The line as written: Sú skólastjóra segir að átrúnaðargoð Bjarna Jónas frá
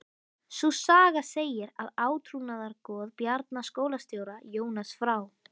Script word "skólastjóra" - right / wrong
wrong